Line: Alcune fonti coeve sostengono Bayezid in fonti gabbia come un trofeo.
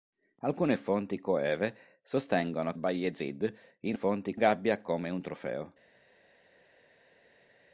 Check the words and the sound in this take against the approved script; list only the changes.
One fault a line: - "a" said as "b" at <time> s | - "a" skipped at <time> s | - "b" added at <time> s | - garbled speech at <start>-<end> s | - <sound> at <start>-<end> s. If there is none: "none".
none